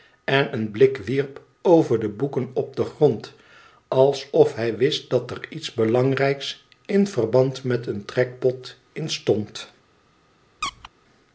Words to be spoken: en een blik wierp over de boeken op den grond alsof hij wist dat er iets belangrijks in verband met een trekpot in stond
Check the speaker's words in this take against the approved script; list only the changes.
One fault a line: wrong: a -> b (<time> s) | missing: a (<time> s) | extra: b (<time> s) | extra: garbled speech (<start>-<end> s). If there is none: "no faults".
no faults